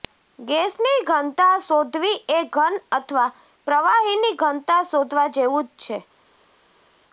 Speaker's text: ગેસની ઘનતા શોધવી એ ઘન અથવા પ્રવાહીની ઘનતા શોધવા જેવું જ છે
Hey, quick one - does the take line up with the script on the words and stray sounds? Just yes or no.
yes